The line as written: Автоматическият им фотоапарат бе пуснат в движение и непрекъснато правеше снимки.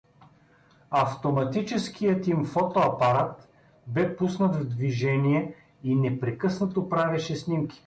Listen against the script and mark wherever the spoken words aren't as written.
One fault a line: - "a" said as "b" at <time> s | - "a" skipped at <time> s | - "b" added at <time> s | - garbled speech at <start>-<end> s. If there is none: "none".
none